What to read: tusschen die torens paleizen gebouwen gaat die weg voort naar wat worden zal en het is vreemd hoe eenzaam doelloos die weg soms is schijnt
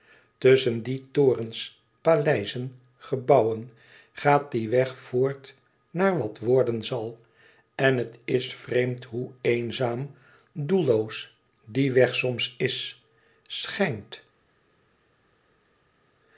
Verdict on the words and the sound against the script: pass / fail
pass